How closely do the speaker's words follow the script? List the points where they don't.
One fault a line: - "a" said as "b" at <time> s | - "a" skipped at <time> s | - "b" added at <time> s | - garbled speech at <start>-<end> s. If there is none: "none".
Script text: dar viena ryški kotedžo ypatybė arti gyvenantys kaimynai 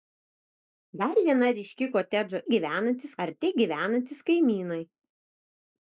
- "ypatybė" said as "gyvenantys" at 2.5 s